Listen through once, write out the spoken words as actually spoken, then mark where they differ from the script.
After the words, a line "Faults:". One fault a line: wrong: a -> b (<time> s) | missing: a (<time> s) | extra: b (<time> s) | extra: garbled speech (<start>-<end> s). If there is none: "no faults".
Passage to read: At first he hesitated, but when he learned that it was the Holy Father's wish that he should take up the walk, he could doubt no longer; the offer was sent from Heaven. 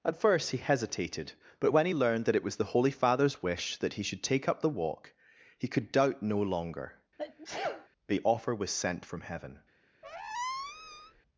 At first he hesitated, but when he learned that it was the Holy Father's wish that he should take up the walk, he could doubt no longer; the offer was sent from Heaven.
Faults:
no faults